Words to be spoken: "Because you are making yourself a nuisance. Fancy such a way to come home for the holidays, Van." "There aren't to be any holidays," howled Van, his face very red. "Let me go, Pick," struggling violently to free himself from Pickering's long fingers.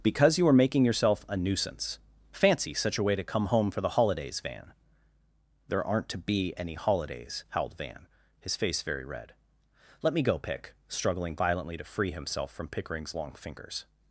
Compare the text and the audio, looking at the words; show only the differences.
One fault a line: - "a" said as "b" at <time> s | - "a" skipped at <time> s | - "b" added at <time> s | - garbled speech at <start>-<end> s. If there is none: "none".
none